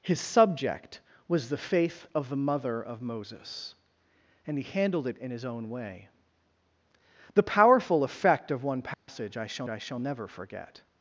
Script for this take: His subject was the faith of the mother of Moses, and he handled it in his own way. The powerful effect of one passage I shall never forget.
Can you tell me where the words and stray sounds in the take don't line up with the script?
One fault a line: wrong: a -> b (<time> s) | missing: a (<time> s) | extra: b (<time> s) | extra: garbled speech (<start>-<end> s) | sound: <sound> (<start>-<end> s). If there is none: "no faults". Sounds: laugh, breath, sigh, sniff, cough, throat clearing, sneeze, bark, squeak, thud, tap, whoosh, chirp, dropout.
sound: dropout (8.9-9.1 s)
extra: I shall (9.7 s)